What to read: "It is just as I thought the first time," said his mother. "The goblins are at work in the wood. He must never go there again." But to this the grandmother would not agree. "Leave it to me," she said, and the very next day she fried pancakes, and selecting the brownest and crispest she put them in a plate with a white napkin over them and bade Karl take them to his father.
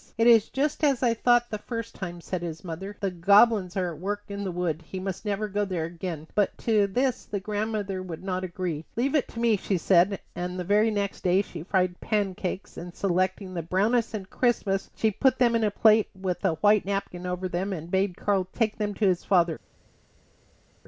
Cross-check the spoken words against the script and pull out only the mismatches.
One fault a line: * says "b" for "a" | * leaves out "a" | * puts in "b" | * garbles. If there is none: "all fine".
all fine